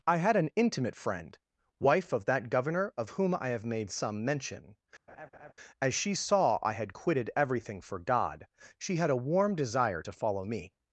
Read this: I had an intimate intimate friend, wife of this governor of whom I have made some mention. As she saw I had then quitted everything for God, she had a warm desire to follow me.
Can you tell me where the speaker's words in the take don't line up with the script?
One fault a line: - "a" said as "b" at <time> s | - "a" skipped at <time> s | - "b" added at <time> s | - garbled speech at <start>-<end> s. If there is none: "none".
- "intimate" skipped at 0.9 s
- "this" said as "that" at 2.2 s
- "then" skipped at 6.9 s